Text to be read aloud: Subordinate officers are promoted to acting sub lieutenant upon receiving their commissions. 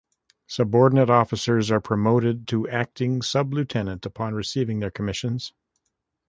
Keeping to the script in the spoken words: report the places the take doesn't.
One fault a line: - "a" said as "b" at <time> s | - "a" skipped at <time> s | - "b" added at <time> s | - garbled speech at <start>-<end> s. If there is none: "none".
none